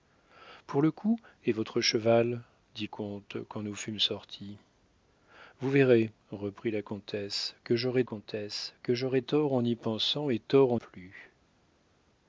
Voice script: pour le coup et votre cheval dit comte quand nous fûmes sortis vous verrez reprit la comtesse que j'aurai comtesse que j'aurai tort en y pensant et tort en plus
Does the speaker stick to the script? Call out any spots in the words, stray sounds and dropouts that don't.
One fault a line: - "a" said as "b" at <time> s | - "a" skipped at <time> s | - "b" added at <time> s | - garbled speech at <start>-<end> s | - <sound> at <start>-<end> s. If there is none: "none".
none